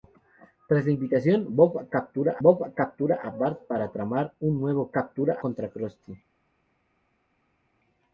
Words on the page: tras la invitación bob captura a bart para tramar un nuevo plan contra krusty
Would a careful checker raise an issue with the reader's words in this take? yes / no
yes